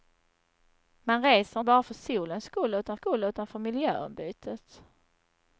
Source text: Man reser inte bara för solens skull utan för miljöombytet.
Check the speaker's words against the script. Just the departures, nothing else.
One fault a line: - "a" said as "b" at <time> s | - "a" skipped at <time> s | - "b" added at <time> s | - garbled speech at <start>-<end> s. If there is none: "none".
- "inte" skipped at 1.6 s
- "skull utan" added at 2.9 s